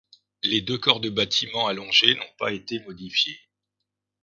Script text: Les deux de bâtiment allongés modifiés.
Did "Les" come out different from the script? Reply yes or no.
no